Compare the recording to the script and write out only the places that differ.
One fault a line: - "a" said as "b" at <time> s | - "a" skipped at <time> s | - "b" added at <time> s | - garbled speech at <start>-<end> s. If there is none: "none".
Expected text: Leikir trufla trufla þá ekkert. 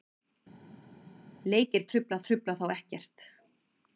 none